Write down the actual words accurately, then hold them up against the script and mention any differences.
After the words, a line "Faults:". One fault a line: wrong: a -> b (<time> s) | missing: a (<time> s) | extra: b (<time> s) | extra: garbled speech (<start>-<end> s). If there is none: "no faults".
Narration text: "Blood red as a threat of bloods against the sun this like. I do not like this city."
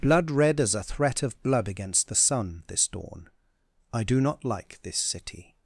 "Blood red as a threat of blood against the sun this dawn. I do not like this city."
Faults:
wrong: bloods -> blood (1.4 s)
wrong: like -> dawn (2.9 s)